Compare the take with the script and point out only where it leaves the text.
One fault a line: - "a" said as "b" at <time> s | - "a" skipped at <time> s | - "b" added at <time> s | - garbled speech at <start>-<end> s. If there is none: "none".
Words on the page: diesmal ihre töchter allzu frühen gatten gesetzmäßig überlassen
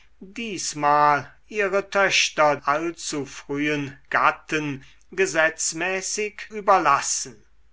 none